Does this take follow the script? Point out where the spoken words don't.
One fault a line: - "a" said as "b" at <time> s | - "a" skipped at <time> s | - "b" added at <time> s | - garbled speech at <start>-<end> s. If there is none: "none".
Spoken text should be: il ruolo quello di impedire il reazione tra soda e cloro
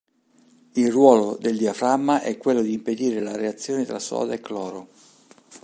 - "del diaframma è" added at 1.4 s
- "il" said as "la" at 3.2 s